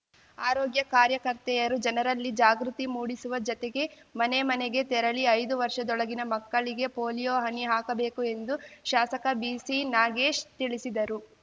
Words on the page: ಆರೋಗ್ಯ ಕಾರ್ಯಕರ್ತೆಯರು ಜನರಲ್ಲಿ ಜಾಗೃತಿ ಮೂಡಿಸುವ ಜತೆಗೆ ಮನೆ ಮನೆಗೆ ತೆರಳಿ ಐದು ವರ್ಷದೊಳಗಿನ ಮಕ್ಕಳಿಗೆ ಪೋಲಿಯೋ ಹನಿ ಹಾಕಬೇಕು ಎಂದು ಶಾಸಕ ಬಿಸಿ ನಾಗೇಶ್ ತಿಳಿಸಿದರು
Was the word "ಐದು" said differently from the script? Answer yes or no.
no